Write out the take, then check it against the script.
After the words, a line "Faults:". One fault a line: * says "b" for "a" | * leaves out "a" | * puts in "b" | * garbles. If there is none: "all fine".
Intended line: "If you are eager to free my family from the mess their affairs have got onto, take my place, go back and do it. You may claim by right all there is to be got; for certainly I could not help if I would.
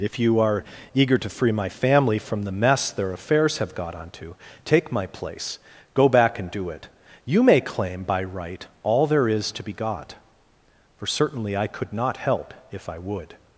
"If you are eager to free my family from the mess their affairs have got onto, take my place, go back and do it. You may claim by right all there is to be got; for certainly I could not help if I would.
Faults:
all fine